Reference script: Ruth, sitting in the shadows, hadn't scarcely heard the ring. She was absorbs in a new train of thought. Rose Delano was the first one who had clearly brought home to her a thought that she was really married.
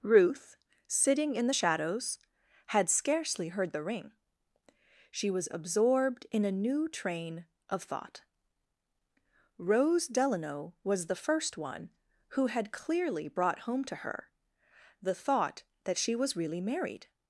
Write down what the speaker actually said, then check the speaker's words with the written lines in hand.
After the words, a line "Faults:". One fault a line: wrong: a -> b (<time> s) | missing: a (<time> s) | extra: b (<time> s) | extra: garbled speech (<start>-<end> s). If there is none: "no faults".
Ruth, sitting in the shadows, had scarcely heard the ring. She was absorbed in a new train of thought. Rose Delano was the first one who had clearly brought home to her the thought that she was really married.
Faults:
wrong: hadn't -> had (2.7 s)
wrong: absorbs -> absorbed (5.5 s)
wrong: a -> the (15.0 s)